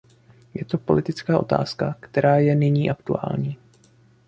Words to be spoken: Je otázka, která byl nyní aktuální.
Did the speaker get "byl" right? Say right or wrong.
wrong